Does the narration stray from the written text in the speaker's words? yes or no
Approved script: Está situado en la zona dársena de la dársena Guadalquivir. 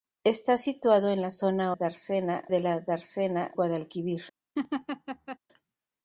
no